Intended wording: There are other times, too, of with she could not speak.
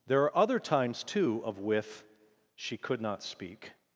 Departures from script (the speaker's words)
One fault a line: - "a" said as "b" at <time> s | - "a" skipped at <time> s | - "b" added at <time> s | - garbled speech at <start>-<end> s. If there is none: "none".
none